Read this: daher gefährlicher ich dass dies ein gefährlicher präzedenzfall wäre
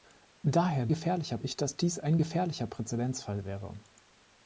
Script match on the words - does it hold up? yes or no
yes